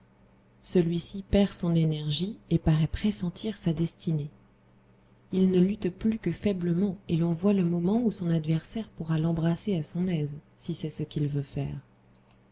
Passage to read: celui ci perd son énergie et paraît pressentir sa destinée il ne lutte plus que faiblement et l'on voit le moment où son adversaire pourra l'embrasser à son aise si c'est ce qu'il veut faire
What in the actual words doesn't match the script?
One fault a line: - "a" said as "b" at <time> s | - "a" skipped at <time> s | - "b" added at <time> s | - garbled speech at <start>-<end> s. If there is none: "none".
none